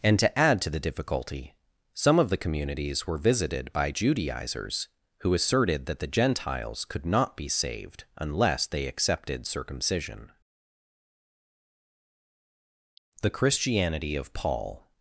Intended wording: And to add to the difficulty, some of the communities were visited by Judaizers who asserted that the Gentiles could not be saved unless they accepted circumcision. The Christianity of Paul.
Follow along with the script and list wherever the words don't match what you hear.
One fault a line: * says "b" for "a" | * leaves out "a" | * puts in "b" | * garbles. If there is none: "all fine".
all fine